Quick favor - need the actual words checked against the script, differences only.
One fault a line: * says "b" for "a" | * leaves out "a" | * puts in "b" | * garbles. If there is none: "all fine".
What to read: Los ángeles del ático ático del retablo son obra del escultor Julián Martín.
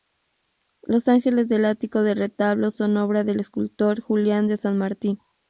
* leaves out "ático"
* puts in "de San"